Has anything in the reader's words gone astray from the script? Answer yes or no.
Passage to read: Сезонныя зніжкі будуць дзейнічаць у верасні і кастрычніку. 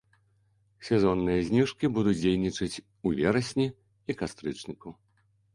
no